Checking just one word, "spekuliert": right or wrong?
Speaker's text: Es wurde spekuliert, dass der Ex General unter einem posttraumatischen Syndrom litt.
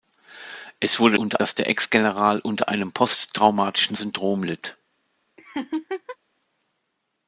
wrong